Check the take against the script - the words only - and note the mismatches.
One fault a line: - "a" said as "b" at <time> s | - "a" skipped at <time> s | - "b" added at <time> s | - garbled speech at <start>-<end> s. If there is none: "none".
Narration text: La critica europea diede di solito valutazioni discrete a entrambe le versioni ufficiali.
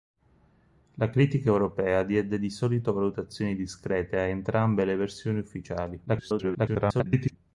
- garbled speech at 6.1-7.4 s